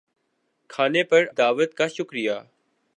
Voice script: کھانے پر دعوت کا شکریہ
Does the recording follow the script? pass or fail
pass